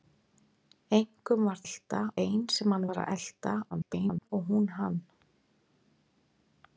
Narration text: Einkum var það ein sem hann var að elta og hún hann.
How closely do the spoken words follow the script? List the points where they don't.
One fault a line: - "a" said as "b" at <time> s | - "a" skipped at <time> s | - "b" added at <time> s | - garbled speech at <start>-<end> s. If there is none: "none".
- "það" said as "elta" at 1.6 s
- garbled speech at 3.7-4.3 s